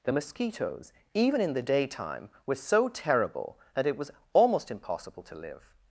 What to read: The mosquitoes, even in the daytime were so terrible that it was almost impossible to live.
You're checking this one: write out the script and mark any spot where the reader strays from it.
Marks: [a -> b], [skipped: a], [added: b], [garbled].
The mosquitoes, even in the daytime were so terrible that it was almost impossible to live.